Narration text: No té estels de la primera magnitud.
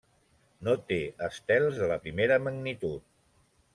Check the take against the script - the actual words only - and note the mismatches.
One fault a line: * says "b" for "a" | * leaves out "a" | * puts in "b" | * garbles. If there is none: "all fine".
all fine